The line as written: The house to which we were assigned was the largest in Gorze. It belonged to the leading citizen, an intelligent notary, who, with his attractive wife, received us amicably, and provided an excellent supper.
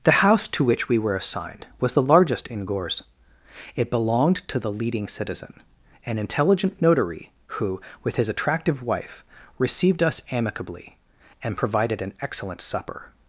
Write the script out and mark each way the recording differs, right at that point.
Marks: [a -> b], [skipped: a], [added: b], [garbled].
The house to which we were assigned was the largest in Gorze. It belonged to the leading citizen, an intelligent notary, who, with his attractive wife, received us amicably, and provided an excellent supper.